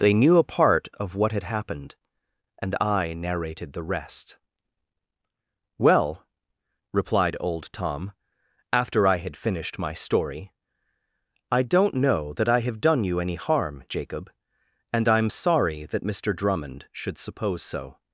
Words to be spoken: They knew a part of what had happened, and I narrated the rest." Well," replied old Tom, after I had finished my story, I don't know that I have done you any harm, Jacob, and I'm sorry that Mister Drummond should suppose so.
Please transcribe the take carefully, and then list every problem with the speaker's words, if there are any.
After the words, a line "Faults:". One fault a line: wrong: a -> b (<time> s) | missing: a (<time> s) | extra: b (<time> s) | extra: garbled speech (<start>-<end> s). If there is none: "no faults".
They knew a part of what had happened, and I narrated the rest." Well," replied old Tom, after I had finished my story, I don't know that I have done you any harm, Jacob, and I'm sorry that Mister Drummond should suppose so.
Faults:
no faults